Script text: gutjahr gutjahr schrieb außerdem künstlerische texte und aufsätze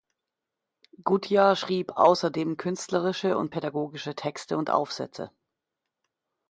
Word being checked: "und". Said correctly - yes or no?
yes